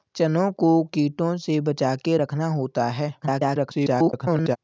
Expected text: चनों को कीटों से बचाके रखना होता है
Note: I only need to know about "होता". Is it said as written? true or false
true